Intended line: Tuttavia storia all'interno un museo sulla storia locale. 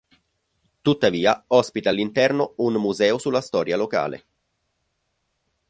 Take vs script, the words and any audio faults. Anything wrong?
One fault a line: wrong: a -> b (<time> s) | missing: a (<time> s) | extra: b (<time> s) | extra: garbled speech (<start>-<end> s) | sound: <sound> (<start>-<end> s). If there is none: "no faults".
wrong: storia -> ospita (1.5 s)